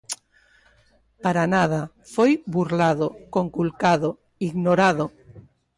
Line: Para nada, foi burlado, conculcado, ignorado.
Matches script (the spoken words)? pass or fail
pass